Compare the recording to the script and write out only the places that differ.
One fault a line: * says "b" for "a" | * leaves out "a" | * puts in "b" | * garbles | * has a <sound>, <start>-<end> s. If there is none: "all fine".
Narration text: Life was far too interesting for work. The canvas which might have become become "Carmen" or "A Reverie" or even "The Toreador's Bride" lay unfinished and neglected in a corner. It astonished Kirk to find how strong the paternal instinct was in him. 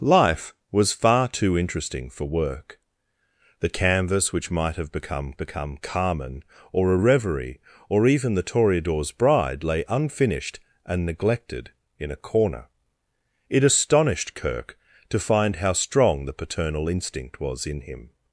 all fine